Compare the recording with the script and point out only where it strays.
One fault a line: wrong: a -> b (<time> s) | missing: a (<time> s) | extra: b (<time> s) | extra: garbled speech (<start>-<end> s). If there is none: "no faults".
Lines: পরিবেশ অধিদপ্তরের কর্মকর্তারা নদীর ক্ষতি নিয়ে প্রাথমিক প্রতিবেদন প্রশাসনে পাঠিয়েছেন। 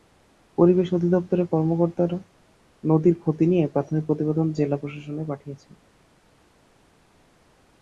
extra: জেলা (4.5 s)